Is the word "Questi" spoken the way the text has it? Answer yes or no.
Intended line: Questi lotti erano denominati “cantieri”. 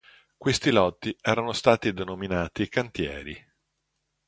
yes